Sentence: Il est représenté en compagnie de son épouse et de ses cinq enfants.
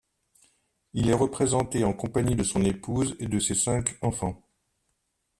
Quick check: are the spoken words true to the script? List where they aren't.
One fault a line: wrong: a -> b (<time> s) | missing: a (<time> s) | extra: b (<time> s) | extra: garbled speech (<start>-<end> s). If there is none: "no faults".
no faults